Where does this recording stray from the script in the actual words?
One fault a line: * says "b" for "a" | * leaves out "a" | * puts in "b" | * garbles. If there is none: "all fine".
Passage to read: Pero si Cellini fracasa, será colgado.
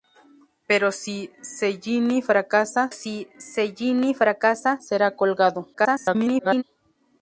* puts in "si Cellini fracasa"
* garbles